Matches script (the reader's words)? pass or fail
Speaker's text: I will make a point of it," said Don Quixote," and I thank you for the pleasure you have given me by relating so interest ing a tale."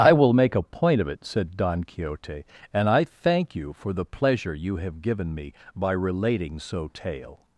fail